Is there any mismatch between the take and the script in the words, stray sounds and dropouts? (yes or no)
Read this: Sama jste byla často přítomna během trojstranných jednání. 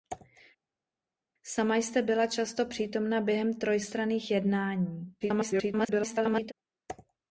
yes